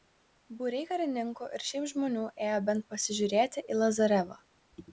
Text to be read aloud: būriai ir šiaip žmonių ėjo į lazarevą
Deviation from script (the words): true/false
true